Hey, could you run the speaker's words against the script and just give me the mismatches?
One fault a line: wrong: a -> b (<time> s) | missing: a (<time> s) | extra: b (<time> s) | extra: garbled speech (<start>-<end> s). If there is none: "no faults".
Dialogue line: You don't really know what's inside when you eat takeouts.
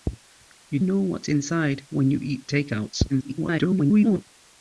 missing: don't really (0.8 s)
extra: garbled speech (3.1-4.3 s)